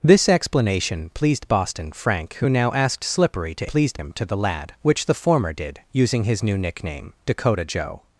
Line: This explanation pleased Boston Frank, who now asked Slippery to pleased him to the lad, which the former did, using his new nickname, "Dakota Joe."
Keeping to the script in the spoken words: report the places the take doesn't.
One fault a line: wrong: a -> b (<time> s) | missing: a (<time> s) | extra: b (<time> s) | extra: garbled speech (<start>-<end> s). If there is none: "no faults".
no faults